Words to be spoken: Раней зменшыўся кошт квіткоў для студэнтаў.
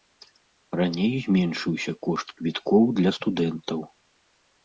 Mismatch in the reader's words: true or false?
false